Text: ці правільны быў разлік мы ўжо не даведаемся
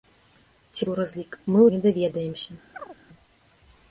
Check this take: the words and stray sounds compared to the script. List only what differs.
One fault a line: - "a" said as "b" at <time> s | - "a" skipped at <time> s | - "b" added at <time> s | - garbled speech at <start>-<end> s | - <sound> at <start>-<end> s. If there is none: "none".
- "правільны" skipped at 0.9 s
- "ўжо" skipped at 1.7 s
- chirp at 2.7-3.0 s